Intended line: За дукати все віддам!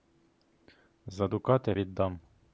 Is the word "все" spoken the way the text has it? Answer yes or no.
no